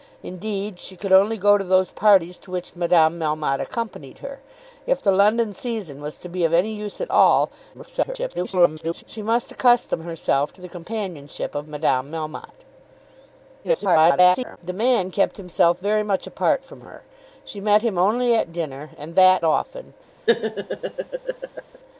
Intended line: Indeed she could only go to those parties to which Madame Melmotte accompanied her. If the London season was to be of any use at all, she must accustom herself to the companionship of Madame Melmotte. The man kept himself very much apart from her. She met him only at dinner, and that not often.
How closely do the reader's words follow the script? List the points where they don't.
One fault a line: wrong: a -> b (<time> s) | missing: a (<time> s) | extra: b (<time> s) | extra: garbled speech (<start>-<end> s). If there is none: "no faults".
extra: garbled speech (7.7-9.0 s)
extra: garbled speech (13.6-14.6 s)
missing: not (19.4 s)